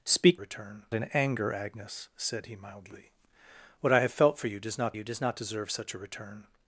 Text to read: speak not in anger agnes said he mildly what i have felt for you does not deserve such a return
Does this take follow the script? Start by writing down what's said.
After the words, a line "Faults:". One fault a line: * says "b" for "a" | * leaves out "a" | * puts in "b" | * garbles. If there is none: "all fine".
speak return in anger agnes said he mildly what i have felt for you does not you does not deserve such a return
Faults:
* says "return" for "not"
* puts in "you does not"